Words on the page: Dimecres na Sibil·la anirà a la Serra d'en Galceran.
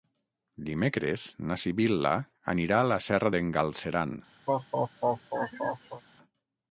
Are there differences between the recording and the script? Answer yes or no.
no